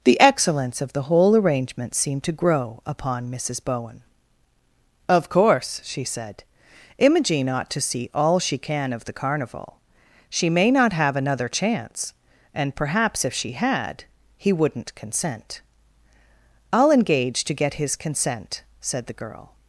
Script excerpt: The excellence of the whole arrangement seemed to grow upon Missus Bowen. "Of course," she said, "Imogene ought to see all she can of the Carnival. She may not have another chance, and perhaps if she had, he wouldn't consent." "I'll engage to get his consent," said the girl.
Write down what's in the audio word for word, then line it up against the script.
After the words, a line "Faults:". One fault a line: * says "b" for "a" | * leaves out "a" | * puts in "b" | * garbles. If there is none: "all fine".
The excellence of the whole arrangement seemed to grow upon Missus Bowen. "Of course," she said, "Imogene ought to see all she can of the Carnival. She may not have another chance, and perhaps if she had, he wouldn't consent." "I'll engage to get his consent," said the girl.
Faults:
all fine